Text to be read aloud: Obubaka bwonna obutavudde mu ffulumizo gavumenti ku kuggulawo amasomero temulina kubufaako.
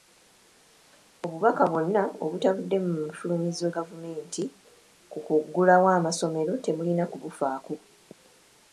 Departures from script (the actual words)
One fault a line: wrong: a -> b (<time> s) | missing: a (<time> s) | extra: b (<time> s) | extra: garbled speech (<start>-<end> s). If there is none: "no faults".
no faults